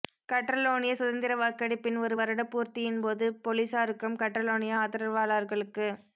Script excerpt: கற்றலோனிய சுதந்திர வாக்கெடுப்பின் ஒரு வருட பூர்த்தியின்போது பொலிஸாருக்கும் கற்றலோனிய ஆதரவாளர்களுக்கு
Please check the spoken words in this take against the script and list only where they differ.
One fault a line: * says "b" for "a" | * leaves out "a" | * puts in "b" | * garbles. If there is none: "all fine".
all fine